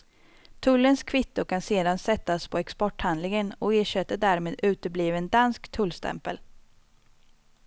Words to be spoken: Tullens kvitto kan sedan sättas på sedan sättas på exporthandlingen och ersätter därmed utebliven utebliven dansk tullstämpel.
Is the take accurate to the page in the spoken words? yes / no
no